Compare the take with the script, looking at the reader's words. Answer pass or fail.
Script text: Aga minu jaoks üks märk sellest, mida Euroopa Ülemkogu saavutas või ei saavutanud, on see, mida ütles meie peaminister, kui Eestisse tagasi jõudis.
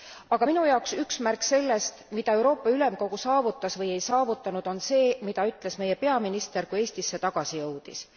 pass